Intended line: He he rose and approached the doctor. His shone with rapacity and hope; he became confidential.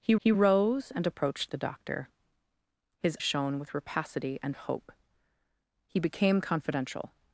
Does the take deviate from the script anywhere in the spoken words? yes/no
no